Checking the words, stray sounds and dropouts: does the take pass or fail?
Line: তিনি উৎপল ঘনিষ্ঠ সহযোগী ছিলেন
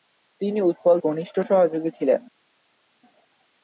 pass